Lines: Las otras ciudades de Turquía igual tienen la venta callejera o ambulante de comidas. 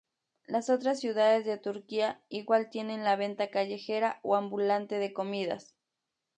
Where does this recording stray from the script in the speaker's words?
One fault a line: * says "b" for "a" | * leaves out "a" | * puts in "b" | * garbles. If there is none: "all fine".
all fine